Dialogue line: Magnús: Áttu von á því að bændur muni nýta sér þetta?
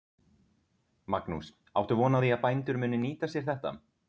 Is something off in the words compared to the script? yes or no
no